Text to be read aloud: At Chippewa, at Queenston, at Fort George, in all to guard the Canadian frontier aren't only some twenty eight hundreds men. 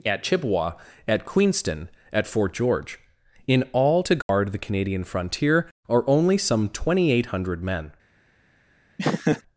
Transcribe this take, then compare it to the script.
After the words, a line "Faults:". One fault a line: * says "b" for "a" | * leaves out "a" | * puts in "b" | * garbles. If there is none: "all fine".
At Chippewa, at Queenston, at Fort George, in all to guard the Canadian frontier are only some twenty eight hundred men.
Faults:
* says "are" for "aren't"
* says "hundred" for "hundreds"